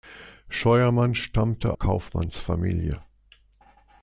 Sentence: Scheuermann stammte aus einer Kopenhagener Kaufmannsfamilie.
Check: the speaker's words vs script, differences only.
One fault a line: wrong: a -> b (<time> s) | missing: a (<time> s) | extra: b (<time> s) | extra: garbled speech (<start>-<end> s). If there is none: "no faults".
missing: aus einer Kopenhagener (1.7 s)